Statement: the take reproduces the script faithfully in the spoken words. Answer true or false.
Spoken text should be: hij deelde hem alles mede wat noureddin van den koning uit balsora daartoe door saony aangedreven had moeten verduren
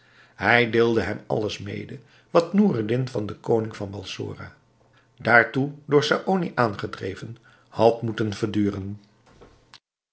false